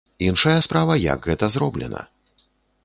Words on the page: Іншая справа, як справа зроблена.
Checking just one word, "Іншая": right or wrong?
right